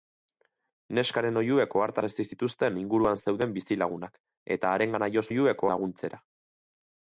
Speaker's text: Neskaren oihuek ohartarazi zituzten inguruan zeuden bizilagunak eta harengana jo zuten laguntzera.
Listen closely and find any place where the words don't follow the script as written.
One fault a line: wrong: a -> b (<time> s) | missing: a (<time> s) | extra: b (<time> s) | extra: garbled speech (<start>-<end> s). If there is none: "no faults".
wrong: zuten -> oihuek (5.3 s)